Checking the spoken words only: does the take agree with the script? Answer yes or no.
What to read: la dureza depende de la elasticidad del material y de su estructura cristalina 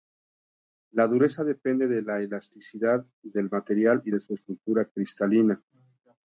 yes